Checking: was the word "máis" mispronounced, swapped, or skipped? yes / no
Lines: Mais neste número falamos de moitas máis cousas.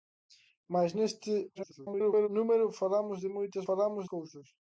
yes